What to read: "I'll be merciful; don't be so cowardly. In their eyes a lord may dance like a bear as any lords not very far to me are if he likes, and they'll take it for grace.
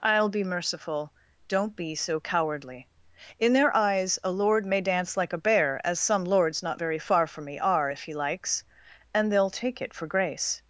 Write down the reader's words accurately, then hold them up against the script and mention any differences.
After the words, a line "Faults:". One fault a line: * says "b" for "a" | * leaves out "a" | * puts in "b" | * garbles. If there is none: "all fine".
"I'll be merciful; don't be so cowardly. In their eyes a lord may dance like a bear as some lords not very far from me are if he likes, and they'll take it for grace.
Faults:
* says "some" for "any"
* says "from" for "to"